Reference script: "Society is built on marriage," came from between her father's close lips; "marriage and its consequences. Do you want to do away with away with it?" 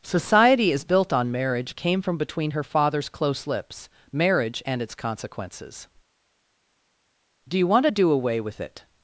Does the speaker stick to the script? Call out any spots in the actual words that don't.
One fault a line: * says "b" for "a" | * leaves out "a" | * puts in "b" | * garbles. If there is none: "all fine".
* leaves out "away with"